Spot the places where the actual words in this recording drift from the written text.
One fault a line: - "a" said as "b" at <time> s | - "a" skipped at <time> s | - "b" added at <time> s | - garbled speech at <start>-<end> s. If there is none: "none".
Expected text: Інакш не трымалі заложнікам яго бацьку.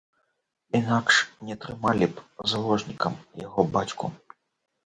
- "б" added at 2.1 s